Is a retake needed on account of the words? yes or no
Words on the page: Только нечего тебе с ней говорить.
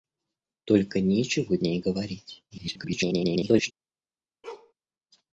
yes